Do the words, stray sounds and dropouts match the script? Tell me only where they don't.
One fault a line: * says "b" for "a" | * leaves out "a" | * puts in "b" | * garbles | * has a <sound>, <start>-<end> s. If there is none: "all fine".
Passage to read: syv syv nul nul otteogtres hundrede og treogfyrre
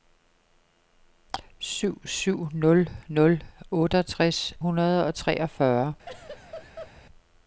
* has a laugh, 6.1-6.9 s